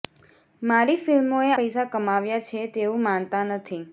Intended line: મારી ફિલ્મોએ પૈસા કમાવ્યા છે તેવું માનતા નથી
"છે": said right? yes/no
yes